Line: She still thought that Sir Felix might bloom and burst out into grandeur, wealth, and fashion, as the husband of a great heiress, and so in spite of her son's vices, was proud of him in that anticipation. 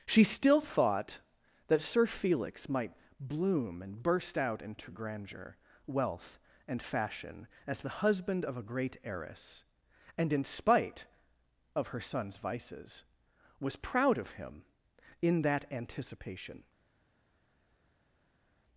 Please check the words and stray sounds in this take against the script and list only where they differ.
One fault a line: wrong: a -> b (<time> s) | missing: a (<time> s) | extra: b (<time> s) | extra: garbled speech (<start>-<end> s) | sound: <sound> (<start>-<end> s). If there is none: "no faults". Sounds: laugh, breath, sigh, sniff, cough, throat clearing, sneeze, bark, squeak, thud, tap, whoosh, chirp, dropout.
missing: so (10.3 s)